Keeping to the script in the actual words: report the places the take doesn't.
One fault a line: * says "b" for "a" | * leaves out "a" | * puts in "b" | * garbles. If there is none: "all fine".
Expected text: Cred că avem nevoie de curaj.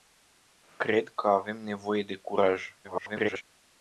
* garbles